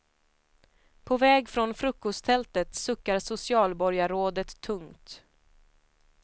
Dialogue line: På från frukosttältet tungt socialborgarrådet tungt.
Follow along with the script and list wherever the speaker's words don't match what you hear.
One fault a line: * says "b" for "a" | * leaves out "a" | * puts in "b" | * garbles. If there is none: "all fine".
* puts in "väg"
* says "suckar" for "tungt"